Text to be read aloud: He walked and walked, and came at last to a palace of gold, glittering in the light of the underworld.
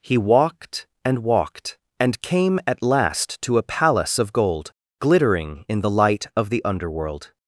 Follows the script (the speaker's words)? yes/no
yes